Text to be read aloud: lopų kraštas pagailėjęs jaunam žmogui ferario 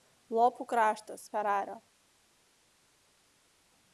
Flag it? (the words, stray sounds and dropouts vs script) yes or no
yes